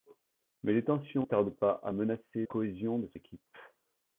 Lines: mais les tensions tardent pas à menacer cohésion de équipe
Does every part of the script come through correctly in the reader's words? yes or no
yes